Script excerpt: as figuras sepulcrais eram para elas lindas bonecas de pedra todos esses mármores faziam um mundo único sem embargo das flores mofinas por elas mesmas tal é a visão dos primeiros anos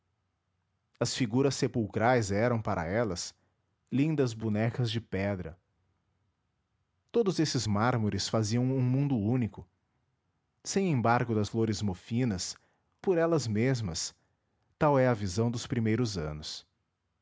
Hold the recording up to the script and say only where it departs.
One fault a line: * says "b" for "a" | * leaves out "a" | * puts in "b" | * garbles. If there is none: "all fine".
all fine